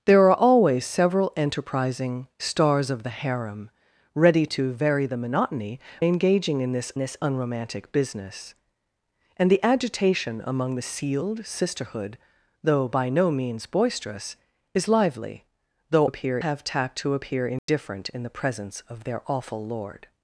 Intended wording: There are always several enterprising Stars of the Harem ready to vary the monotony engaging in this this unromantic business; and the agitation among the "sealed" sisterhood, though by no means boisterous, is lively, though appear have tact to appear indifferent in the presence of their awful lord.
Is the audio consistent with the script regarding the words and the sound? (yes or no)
no